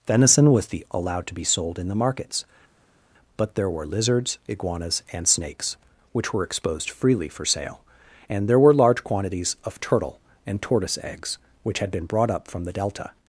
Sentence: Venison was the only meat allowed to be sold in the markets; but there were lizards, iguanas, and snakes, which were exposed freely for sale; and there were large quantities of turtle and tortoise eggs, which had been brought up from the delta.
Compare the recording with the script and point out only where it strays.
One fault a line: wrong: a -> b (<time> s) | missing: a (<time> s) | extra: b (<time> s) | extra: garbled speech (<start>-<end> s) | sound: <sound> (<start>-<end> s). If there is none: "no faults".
missing: only meat (0.8 s)